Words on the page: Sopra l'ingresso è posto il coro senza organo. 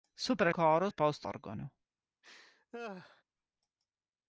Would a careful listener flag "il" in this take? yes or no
yes